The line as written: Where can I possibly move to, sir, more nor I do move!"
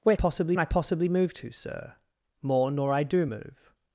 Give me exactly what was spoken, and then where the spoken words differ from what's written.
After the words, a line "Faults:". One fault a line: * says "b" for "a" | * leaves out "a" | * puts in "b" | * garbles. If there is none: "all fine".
Where possibly I possibly move to, sir, more nor I do move!"
Faults:
* says "possibly" for "can"